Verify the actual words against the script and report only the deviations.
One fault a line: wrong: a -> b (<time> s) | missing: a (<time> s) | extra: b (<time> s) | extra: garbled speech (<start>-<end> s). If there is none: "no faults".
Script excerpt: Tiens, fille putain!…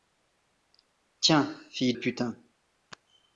no faults